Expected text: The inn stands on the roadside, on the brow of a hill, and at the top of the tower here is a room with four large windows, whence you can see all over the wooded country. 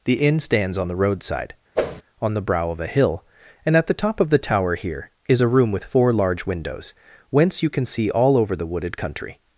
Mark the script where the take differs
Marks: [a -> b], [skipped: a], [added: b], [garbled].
The inn stands on the roadside, on the brow of a hill, and at the top of the tower here is a room with four large windows, whence you can see all over the wooded country.